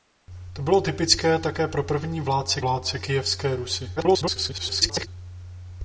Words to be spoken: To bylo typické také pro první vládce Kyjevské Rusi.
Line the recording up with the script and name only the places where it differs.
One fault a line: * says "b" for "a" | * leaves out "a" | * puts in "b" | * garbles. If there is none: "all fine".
* puts in "vládce"
* garbles